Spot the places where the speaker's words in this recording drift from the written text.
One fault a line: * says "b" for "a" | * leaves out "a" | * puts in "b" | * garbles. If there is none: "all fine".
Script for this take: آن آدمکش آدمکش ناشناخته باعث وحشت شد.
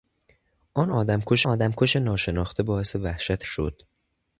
all fine